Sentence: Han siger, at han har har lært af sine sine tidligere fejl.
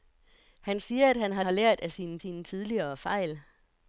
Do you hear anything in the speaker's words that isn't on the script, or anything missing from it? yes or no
no